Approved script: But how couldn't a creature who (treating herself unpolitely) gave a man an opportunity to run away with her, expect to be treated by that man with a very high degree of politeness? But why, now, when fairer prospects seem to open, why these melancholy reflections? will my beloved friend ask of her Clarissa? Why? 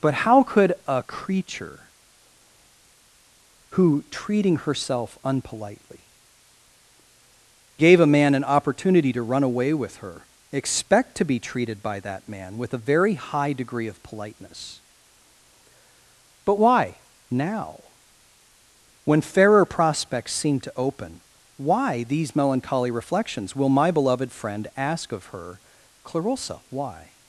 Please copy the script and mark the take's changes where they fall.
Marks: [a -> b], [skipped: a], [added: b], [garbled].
But how [couldn't -> could] a creature who (treating herself unpolitely) gave a man an opportunity to run away with her, expect to be treated by that man with a very high degree of politeness? But why, now, when fairer prospects seem to open, why these melancholy reflections? will my beloved friend ask of her Clarissa? Why?